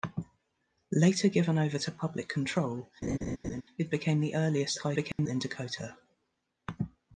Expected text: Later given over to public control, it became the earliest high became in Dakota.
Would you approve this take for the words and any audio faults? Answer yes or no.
no